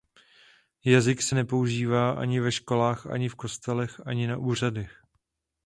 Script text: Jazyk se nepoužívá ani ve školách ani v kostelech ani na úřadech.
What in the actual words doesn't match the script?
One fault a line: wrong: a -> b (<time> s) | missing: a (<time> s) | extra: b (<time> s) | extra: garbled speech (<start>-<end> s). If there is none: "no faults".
no faults